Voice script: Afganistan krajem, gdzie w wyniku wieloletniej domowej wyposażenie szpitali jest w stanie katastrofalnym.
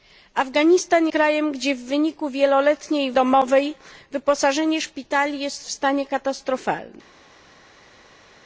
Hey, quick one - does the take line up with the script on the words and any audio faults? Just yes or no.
yes